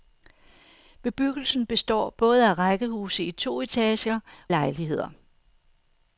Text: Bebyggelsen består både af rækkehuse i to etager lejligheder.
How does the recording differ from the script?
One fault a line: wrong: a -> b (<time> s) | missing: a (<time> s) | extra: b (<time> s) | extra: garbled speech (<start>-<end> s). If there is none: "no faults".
no faults